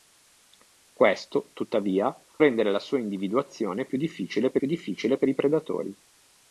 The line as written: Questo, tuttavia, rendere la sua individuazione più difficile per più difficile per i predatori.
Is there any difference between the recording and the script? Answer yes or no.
no